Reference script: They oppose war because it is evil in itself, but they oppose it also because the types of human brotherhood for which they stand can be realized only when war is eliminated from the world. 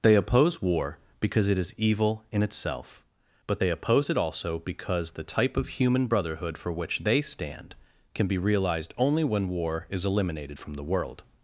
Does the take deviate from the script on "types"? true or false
true